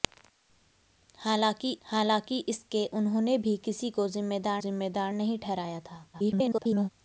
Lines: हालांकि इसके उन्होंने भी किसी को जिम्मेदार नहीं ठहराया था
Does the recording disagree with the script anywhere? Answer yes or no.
yes